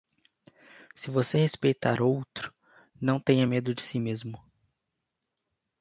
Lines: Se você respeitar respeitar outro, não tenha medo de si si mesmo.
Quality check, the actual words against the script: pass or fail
fail